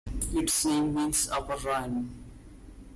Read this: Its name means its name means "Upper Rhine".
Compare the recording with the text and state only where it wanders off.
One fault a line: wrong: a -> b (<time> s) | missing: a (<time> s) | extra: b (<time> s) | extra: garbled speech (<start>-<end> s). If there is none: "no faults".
missing: its name means (1.3 s)